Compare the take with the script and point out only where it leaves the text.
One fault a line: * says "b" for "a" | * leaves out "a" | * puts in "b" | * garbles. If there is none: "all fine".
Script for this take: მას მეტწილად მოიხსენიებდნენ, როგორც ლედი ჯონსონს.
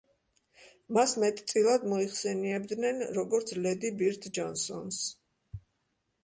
* puts in "ბირდ"